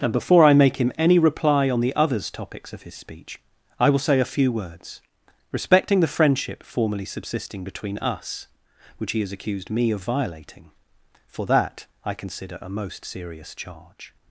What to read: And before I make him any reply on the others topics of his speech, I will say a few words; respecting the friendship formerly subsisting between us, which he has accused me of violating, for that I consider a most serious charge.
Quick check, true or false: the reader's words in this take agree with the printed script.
true